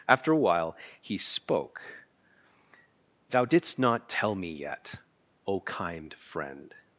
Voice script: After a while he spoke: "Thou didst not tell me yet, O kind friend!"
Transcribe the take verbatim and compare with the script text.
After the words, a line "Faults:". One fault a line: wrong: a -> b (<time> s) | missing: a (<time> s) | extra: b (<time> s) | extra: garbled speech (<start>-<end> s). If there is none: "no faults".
After a while he spoke: "Thou didst not tell me yet, O kind friend!"
Faults:
no faults